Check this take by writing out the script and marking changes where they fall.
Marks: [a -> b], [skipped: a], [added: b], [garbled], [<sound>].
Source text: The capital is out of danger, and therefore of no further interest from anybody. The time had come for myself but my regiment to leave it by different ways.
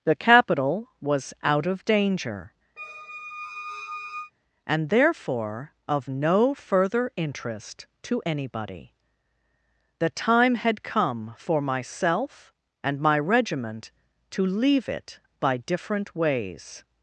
The capital [is -> was] out of danger, [squeak] and therefore of no further interest [from -> to] anybody. The time had come for myself [but -> and] my regiment to leave it by different ways.